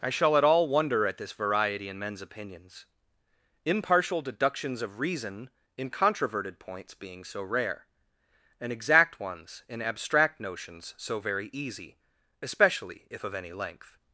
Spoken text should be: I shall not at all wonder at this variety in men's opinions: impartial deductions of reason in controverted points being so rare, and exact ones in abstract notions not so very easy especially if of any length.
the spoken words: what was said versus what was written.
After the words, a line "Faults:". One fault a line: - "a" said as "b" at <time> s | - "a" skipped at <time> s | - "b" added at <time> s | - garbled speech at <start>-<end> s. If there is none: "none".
I shall at all wonder at this variety in men's opinions: impartial deductions of reason in controverted points being so rare, and exact ones in abstract notions so very easy especially if of any length.
Faults:
- "not" skipped at 0.3 s
- "not" skipped at 10.9 s